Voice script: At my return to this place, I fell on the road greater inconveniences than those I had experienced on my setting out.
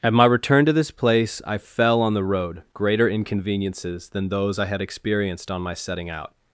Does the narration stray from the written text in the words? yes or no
no